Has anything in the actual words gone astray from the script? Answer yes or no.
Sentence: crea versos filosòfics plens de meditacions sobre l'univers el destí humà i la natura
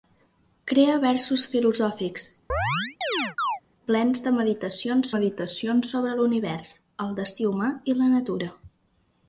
yes